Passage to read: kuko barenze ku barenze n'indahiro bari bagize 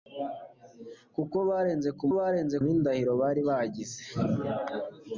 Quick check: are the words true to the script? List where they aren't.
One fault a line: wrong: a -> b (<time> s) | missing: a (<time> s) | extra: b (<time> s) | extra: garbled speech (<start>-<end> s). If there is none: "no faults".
no faults